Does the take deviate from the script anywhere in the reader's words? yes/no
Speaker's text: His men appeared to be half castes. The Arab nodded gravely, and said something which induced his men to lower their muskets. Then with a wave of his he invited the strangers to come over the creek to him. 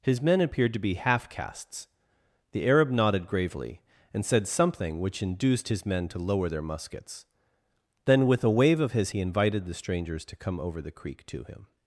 no